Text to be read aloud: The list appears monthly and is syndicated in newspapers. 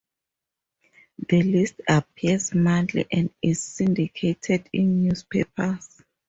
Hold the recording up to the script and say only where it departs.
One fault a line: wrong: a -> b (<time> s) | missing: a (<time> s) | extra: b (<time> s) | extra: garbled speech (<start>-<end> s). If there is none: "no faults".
no faults